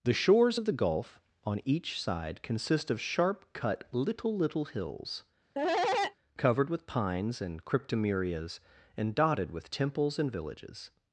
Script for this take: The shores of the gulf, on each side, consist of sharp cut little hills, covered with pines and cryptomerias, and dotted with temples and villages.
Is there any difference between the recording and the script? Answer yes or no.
yes